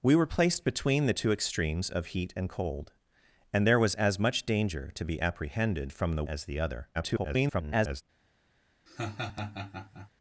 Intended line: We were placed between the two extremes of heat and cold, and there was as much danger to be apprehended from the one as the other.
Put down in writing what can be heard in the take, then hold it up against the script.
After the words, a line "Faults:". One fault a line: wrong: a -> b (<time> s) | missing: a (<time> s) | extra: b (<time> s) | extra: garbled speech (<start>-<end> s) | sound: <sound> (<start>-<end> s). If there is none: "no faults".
We were placed between the two extremes of heat and cold, and there was as much danger to be apprehended from the as the other. [garbled]
Faults:
missing: one (6.2 s)
extra: garbled speech (6.9-8.0 s)
sound: laugh (8.9-10.1 s)